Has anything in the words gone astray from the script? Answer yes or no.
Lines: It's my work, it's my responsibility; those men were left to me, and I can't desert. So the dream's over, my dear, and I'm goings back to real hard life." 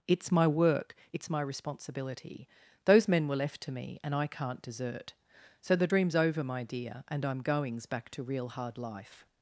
no